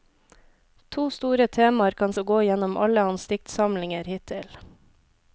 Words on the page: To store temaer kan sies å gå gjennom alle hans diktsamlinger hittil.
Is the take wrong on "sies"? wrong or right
wrong